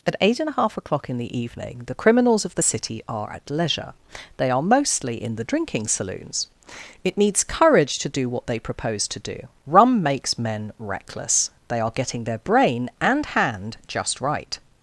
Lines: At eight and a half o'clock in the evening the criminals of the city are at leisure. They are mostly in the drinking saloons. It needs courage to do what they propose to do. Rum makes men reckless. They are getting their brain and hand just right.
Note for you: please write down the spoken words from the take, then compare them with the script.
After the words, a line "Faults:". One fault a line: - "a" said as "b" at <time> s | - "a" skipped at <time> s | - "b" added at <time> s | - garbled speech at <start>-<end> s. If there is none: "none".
At eight and a half o'clock in the evening the criminals of the city are at leisure. They are mostly in the drinking saloons. It needs courage to do what they propose to do. Rum makes men reckless. They are getting their brain and hand just right.
Faults:
none